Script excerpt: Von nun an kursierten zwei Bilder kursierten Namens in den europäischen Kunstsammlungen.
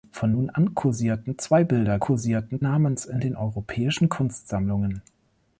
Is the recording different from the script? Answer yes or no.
no